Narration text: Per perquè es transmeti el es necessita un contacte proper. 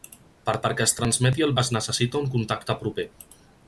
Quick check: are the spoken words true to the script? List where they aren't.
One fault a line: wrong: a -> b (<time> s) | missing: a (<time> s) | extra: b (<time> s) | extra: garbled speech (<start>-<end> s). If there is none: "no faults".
no faults